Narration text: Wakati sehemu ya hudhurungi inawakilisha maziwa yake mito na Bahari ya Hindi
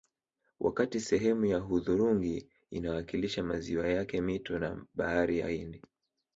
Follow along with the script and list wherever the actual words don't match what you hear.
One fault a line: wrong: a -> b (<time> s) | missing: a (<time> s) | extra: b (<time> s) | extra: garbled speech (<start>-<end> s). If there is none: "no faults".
no faults